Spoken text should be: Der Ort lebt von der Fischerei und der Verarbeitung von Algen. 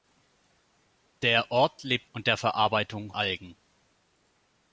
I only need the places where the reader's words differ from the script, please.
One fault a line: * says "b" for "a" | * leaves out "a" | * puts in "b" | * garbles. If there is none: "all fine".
* leaves out "von der Fischerei"
* leaves out "von"